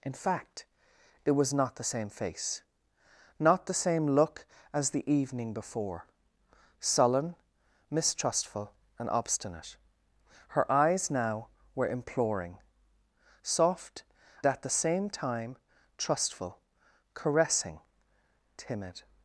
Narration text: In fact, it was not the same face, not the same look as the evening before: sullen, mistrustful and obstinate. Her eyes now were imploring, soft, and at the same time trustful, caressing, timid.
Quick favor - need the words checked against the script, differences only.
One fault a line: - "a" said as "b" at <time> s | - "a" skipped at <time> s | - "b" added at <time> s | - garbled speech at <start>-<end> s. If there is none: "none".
- "and" skipped at 14.0 s